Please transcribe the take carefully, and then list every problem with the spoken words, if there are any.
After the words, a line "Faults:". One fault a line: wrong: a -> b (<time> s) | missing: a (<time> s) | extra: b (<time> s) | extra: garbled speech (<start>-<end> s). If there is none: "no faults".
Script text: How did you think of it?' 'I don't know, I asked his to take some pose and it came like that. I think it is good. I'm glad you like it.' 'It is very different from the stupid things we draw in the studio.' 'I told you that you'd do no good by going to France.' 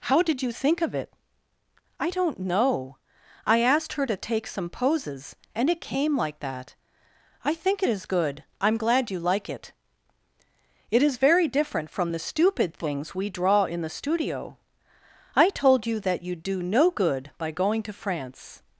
How did you think of it?' 'I don't know, I asked her to take some poses and it came like that. I think it is good. I'm glad you like it.' 'It is very different from the stupid things we draw in the studio.' 'I told you that you'd do no good by going to France.'
Faults:
wrong: his -> her (3.9 s)
wrong: pose -> poses (4.7 s)